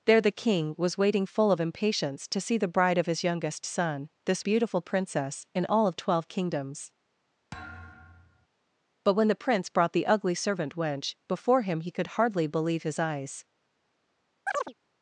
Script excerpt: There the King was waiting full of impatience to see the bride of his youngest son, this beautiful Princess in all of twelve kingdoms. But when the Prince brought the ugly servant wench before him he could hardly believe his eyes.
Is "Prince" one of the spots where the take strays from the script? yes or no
no